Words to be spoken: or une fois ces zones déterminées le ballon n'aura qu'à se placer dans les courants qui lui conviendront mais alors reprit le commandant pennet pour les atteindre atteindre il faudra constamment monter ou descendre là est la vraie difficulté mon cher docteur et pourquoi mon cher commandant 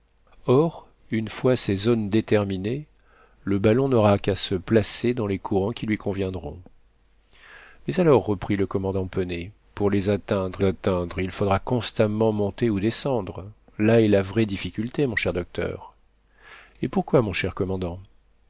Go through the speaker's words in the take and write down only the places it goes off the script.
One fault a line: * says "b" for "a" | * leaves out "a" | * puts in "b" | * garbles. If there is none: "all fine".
all fine